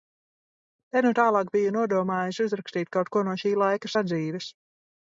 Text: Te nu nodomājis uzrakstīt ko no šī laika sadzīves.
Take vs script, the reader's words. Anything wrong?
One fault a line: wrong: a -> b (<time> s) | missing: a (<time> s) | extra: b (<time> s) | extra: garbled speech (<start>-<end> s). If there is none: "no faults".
extra: tālāk biju (1.2 s)
extra: kaut (3.0 s)